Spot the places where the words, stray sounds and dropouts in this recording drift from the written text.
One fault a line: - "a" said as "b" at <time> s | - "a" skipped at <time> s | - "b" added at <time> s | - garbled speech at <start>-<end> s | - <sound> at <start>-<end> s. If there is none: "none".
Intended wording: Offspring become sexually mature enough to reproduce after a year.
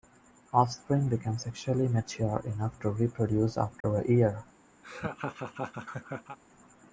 - dropout at 3.8-3.8 s
- laugh at 4.8-6.4 s